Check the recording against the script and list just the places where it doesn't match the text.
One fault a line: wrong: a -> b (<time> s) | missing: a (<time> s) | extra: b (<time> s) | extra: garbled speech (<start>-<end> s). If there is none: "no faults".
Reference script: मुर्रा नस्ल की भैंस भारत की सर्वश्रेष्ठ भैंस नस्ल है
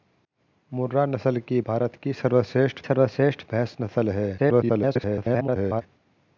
missing: भैंस (1.6 s)
extra: सर्वश्रेष्ठ (2.8 s)
extra: garbled speech (4.4-5.8 s)